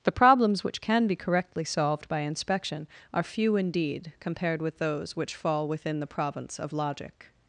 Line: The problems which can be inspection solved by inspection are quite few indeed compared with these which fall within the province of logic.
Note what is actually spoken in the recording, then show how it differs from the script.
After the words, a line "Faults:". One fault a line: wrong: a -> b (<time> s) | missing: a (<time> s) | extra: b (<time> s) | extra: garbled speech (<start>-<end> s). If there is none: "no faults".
The problems which can be correctly solved by inspection are few indeed compared with those which fall within the province of logic.
Faults:
wrong: inspection -> correctly (1.1 s)
missing: quite (3.2 s)
wrong: these -> those (4.8 s)